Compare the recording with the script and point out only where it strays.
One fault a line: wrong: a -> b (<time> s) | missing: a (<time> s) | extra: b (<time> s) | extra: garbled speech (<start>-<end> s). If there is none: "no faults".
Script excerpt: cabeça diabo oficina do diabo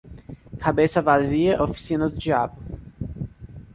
wrong: diabo -> vazia (1.0 s)